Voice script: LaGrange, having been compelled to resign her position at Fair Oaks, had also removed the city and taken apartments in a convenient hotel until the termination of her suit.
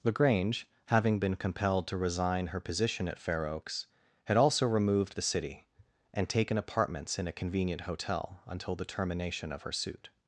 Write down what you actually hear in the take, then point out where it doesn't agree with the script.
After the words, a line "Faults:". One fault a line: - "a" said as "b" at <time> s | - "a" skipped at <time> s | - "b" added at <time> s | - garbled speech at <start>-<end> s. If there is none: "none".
LaGrange, having been compelled to resign her position at Fair Oaks, had also removed the city and taken apartments in a convenient hotel until the termination of her suit.
Faults:
none